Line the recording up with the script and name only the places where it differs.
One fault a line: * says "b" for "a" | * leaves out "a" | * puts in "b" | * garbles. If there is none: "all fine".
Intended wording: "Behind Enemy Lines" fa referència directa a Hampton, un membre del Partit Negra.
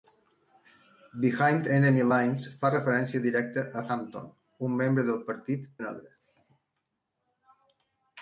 all fine